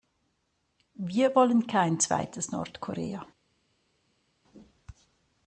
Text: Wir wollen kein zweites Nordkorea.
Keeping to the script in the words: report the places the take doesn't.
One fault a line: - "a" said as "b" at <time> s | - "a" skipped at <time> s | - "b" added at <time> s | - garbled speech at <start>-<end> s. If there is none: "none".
none